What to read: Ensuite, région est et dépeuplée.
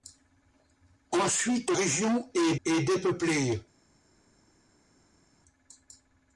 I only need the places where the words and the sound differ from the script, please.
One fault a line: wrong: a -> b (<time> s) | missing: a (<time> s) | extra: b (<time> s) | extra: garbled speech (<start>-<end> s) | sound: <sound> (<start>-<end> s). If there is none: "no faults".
no faults